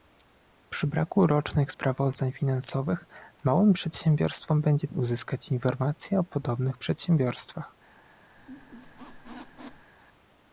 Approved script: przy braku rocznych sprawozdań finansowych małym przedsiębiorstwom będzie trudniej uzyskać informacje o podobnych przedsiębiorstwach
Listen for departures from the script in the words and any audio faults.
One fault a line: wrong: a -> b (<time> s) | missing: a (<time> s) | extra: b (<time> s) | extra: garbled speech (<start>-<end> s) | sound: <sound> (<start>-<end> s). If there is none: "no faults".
missing: trudniej (4.9 s)
sound: squeak (8.4-9.9 s)